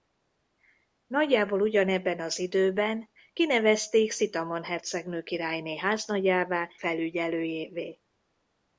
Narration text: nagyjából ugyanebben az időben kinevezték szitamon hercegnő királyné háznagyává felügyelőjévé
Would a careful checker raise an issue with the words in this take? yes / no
no